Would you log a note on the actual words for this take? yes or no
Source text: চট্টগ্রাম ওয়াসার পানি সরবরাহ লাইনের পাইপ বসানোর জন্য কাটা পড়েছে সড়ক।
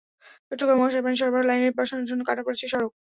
yes